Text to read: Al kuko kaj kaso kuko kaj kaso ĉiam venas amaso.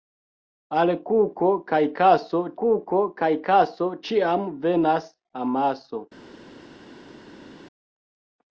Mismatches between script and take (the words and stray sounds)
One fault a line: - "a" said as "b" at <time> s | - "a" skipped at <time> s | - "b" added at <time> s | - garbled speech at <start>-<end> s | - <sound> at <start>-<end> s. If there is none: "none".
none